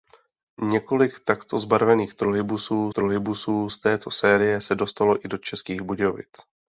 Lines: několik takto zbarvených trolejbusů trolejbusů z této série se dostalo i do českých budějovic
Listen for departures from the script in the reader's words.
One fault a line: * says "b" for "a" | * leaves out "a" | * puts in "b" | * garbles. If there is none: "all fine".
all fine